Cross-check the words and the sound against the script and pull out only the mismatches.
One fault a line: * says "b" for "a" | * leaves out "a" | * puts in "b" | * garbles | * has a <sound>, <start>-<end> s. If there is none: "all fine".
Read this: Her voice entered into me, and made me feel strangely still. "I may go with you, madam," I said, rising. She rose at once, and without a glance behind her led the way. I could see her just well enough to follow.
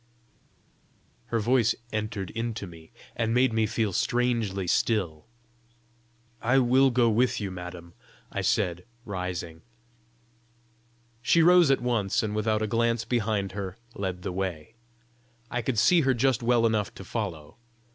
* says "will" for "may"